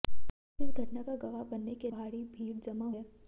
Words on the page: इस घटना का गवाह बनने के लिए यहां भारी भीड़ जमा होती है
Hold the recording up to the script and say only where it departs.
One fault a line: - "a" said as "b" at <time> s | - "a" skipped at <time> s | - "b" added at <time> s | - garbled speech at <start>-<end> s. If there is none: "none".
- "लिए यहां" skipped at 1.9 s
- "होती" skipped at 2.9 s